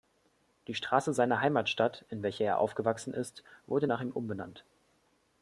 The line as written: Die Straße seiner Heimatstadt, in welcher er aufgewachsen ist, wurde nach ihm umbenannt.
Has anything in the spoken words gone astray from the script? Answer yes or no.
no